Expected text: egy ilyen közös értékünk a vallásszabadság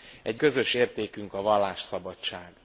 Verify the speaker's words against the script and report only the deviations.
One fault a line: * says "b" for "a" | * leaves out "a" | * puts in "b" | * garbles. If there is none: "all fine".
* leaves out "ilyen"